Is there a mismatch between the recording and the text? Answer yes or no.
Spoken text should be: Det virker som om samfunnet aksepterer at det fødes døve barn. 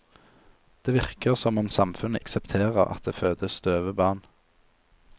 no